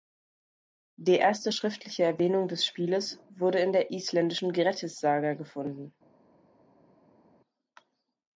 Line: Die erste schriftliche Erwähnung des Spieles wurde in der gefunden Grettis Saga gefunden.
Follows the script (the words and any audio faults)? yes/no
no